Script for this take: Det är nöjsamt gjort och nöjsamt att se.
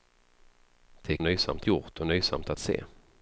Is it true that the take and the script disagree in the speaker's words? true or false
false